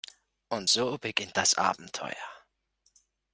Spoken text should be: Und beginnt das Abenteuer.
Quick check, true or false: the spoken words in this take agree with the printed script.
false